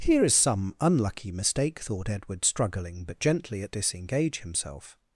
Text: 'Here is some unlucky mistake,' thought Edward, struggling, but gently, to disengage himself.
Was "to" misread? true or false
true